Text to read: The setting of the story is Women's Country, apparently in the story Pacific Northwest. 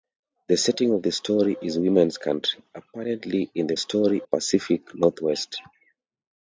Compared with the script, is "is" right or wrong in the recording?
right